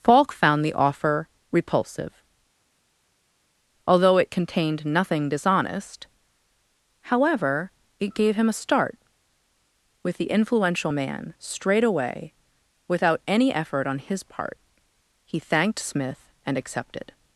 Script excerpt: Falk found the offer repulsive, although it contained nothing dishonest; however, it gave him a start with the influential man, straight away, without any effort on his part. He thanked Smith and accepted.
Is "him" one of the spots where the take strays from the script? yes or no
no